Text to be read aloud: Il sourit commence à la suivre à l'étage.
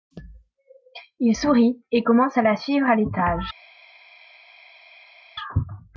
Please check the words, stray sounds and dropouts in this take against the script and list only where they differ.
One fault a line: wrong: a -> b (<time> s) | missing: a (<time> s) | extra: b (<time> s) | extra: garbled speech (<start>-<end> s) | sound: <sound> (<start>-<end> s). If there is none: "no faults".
extra: et (1.9 s)